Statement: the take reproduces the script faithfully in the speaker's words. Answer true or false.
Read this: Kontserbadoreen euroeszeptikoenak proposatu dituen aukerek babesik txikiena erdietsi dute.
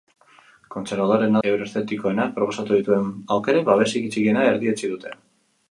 true